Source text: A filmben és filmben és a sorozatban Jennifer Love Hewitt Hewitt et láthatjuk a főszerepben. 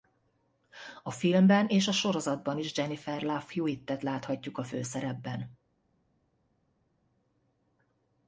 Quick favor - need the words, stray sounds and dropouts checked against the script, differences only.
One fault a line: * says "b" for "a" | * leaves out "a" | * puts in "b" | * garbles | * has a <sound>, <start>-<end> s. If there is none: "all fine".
* leaves out "filmben és"
* puts in "is"
* leaves out "Hewitt"